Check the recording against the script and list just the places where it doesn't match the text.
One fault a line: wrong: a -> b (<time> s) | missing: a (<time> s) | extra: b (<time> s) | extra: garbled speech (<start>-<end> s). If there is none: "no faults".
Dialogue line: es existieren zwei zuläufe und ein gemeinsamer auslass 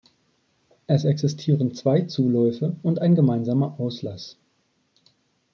no faults